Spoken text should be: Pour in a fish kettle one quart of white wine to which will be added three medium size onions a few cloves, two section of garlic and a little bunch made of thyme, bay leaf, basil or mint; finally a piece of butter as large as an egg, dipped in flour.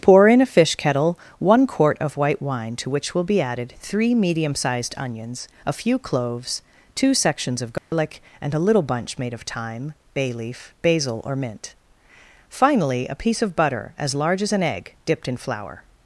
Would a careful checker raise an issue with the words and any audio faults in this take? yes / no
yes